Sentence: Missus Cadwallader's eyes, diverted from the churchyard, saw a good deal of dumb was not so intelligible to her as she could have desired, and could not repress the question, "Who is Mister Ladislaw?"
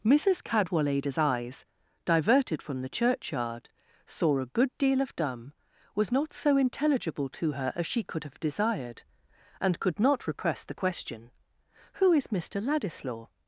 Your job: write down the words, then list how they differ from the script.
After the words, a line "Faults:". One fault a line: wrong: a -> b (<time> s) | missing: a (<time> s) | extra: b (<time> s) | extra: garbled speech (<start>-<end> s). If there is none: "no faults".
Missus Cadwallader's eyes, diverted from the churchyard, saw a good deal of dumb was not so intelligible to her as she could have desired, and could not repress the question, "Who is Mister Ladislaw?"
Faults:
no faults